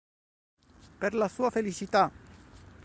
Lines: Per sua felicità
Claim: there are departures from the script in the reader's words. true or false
true